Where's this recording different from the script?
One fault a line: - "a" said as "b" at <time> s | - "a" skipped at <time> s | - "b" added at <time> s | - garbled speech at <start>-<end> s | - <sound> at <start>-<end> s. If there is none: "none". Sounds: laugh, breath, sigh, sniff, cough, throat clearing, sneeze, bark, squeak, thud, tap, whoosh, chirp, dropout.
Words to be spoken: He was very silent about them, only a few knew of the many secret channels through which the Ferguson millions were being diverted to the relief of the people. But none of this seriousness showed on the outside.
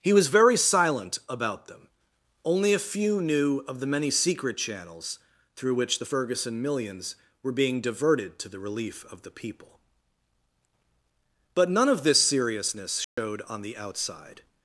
- dropout at 13.0-13.2 s